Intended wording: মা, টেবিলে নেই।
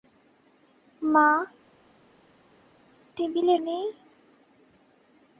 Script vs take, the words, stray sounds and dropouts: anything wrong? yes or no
no